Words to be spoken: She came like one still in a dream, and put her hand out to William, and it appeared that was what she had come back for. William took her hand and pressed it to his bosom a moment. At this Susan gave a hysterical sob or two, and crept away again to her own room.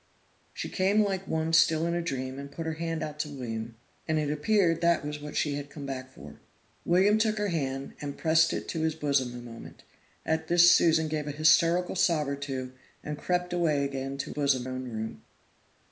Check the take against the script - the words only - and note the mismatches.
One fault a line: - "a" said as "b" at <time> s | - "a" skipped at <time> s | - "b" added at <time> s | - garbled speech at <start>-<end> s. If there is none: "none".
- "her" said as "bosom" at 14.3 s